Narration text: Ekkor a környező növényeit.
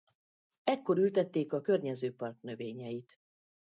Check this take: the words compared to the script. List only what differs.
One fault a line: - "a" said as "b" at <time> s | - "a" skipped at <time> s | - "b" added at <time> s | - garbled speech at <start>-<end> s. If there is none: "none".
- "ültették" added at 1.0 s
- "park" added at 2.1 s